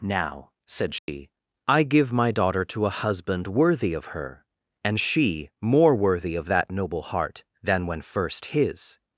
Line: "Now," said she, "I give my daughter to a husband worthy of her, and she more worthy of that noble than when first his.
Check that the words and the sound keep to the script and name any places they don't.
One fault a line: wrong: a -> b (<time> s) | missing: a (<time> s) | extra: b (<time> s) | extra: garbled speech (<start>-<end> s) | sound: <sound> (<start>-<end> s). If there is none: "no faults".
sound: dropout (1.0-1.1 s)
extra: heart (7.0 s)